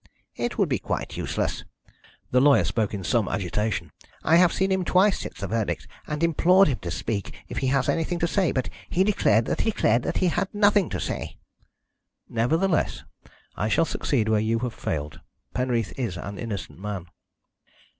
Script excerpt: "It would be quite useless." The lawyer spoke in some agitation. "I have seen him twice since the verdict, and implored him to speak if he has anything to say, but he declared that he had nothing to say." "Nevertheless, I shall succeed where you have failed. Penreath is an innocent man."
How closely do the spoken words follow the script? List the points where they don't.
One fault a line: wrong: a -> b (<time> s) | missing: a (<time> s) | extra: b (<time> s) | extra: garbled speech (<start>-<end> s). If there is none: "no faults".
extra: declared that (9.6 s)